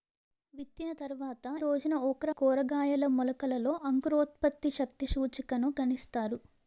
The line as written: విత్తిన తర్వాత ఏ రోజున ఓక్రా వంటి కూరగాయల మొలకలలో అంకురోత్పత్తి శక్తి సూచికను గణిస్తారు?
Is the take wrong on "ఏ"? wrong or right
wrong